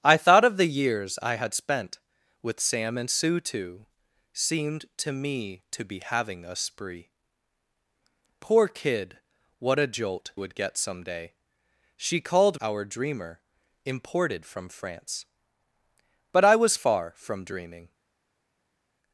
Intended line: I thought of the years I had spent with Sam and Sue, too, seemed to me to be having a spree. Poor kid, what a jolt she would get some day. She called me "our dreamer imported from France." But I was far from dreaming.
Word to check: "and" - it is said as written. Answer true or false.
true